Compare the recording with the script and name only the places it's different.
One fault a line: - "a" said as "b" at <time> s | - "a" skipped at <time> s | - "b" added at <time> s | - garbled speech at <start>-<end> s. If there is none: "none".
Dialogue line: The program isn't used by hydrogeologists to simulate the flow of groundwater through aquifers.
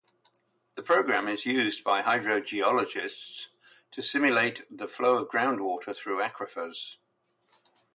- "isn't" said as "is" at 1.3 s